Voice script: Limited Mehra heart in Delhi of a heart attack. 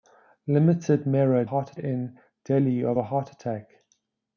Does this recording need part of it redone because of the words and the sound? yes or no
no